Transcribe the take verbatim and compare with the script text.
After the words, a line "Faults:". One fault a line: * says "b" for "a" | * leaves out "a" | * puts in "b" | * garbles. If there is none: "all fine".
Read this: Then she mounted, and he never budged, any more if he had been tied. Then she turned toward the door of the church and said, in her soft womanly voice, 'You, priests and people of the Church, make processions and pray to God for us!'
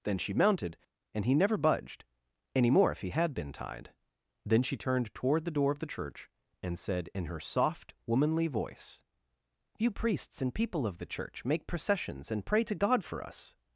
Then she mounted, and he never budged, any more if he had been tied. Then she turned toward the door of the church and said, in her soft womanly voice, 'You, priests and people of the Church, make processions and pray to God for us!'
Faults:
all fine